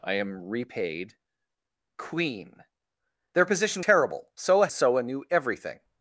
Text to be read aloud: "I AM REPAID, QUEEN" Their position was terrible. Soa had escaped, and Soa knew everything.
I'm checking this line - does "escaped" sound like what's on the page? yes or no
no